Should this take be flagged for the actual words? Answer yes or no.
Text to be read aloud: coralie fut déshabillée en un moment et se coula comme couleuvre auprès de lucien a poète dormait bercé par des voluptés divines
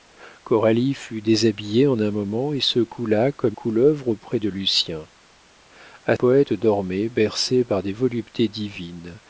no